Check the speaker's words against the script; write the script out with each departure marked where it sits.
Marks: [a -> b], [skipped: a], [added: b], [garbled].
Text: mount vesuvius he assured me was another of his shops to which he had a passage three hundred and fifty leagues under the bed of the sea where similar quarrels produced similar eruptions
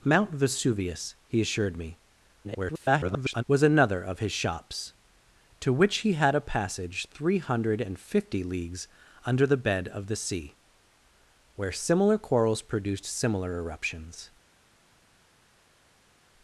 mount vesuvius he assured me [garbled] was another of his shops to which he had a passage three hundred and fifty leagues under the bed of the sea where similar quarrels produced similar eruptions